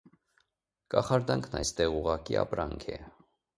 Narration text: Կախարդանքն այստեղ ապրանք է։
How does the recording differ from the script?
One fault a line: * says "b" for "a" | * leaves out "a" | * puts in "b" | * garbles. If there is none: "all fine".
* puts in "ուղղակի"